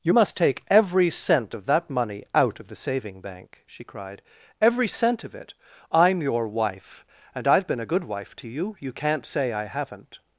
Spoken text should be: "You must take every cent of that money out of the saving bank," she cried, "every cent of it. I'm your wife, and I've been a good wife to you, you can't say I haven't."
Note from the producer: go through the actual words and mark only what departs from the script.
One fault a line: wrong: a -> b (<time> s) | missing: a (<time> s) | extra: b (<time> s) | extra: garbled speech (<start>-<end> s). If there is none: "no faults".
no faults